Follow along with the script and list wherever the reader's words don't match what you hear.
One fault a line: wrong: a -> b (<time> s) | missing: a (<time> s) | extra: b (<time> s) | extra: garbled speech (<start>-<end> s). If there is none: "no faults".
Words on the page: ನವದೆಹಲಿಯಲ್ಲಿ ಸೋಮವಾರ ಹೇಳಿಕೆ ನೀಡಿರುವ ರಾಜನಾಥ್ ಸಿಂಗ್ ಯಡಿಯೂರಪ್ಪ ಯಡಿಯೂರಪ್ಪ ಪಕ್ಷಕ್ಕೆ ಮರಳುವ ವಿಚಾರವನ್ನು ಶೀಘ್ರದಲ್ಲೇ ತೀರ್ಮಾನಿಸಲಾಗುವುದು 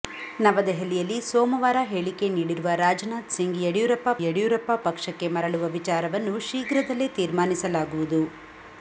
no faults